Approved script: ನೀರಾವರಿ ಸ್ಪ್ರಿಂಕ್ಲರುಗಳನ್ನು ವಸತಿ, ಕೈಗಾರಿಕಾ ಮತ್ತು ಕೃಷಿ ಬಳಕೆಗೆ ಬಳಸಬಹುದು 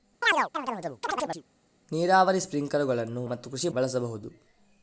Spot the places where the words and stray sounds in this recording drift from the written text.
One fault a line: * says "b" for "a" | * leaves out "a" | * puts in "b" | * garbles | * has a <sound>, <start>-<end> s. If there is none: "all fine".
* has a chirp, 0.2-1.4 s
* leaves out "ವಸತಿ ಕೈಗಾರಿಕಾ"
* leaves out "ಬಳಕೆಗೆ"